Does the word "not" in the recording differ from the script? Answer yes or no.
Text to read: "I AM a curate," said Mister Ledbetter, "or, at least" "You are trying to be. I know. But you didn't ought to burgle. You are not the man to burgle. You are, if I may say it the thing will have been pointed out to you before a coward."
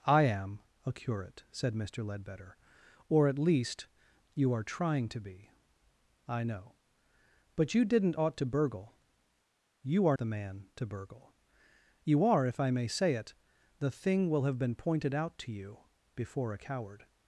yes